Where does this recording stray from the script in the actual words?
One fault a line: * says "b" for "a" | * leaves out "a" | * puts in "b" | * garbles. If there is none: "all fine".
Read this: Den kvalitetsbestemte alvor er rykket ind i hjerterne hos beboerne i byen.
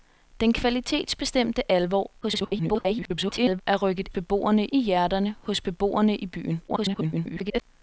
* garbles
* says "beboerne" for "ind"
* garbles